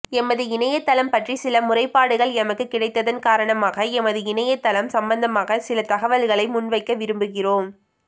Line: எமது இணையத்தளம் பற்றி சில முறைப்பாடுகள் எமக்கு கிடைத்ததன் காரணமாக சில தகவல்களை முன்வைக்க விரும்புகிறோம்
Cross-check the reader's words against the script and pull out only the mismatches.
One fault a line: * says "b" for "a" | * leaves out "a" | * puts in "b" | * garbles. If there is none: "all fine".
* puts in "எமது இணையத்தளம் சம்பந்தமாக"